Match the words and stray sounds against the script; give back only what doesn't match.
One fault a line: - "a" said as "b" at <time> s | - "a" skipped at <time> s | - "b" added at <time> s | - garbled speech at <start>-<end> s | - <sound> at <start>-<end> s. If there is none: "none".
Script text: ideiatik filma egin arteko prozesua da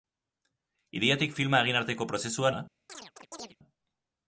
- chirp at 2.9-3.6 s